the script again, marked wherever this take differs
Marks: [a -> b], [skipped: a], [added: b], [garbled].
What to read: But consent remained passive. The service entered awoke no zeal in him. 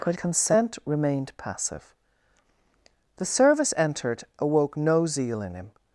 But consent remained passive. The service entered awoke no zeal in him.